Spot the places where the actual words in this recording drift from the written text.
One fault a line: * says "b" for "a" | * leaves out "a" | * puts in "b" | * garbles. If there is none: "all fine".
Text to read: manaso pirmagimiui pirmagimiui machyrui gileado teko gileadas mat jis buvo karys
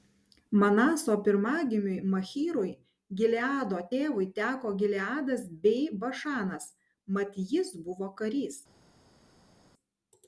* leaves out "pirmagimiui"
* puts in "tėvui"
* puts in "bei bašanas"